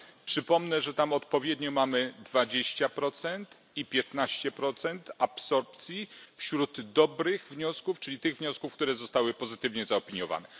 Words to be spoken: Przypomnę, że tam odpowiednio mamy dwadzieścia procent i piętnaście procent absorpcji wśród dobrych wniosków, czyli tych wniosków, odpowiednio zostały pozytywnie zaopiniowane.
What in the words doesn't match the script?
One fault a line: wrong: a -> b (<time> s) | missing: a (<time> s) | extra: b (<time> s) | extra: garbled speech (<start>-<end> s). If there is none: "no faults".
wrong: odpowiednio -> które (8.7 s)